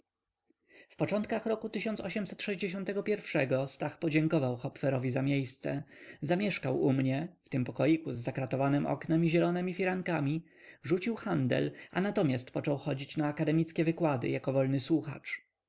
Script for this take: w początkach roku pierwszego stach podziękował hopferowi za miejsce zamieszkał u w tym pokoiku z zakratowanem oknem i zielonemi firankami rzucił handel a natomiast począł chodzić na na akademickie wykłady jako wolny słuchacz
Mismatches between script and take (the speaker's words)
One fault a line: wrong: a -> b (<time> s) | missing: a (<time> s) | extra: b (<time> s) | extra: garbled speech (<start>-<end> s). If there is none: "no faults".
extra: mnie (6.9 s)
missing: na (13.3 s)